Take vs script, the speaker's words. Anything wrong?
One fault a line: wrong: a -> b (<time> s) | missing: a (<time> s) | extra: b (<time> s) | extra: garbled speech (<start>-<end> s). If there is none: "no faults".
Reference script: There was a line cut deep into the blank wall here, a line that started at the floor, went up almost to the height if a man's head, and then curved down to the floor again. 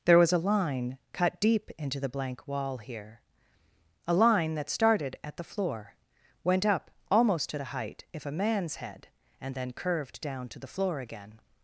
no faults